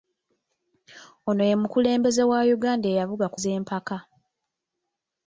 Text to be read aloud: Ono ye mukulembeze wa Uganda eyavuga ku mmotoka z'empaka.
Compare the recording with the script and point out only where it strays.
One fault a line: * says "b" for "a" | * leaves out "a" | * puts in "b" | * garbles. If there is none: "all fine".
* leaves out "mmotoka"